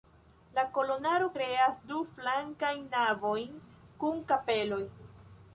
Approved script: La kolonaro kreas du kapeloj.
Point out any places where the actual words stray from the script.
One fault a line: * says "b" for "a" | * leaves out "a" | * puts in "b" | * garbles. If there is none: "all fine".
* puts in "flankajn navojn kun"